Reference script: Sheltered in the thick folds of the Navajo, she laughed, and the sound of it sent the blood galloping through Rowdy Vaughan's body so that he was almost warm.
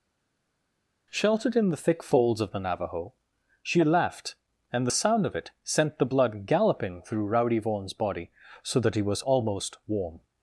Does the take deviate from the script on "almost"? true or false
false